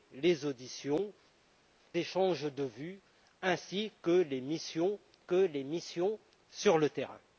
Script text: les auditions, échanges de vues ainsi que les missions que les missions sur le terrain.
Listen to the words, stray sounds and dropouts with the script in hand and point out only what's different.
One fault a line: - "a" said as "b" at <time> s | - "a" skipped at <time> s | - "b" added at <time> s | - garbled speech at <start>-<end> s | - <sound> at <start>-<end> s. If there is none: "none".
none